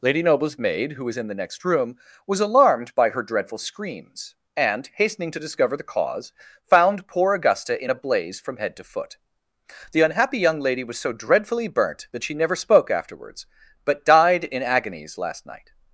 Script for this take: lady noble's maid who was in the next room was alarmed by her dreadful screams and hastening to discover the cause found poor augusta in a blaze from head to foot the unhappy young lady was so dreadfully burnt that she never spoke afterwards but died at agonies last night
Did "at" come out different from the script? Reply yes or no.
yes